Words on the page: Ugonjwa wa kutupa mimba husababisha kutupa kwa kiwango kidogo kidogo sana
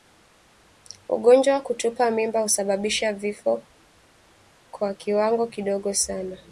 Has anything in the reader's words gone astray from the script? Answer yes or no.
yes